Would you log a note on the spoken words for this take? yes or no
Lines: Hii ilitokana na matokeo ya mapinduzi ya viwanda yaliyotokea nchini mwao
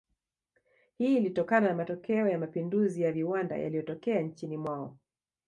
no